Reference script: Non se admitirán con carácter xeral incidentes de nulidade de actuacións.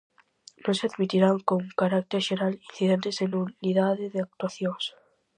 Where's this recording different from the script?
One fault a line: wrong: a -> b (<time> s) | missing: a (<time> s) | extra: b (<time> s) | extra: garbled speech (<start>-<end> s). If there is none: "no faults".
no faults